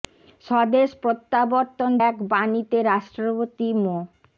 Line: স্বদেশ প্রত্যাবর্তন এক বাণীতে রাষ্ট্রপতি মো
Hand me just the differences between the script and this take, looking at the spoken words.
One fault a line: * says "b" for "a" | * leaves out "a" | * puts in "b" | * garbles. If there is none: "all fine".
all fine